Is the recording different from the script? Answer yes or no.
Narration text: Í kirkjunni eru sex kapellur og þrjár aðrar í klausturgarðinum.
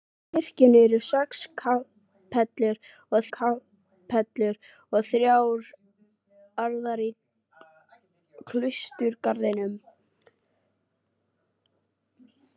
yes